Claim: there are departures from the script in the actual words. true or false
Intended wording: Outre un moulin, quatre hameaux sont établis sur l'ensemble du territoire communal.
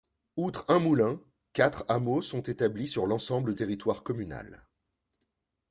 true